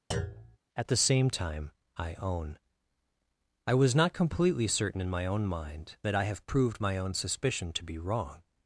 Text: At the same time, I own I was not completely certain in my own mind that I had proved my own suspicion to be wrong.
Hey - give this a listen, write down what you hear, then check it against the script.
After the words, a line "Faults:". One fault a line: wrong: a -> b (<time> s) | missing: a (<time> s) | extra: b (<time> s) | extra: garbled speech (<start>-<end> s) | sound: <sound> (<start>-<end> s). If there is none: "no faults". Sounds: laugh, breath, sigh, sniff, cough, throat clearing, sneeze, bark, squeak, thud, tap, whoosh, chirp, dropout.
At the same time, I own I was not completely certain in my own mind that I have proved my own suspicion to be wrong.
Faults:
sound: thud (0.1-0.6 s)
wrong: had -> have (6.2 s)